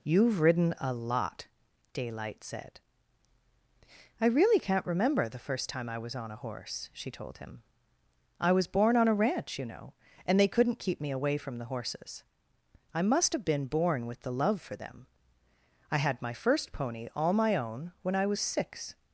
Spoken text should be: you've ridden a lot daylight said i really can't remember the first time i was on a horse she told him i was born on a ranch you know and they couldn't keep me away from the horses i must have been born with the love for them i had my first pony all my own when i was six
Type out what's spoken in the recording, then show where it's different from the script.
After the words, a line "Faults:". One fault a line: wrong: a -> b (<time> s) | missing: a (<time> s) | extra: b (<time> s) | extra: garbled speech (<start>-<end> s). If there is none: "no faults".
you've ridden a lot daylight said i really can't remember the first time i was on a horse she told him i was born on a ranch you know and they couldn't keep me away from the horses i must have been born with the love for them i had my first pony all my own when i was six
Faults:
no faults